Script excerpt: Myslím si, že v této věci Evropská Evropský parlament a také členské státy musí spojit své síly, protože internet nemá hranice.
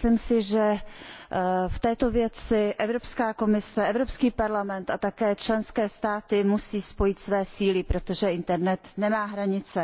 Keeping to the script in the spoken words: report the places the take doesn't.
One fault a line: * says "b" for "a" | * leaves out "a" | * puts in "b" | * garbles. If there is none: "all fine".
* puts in "komise"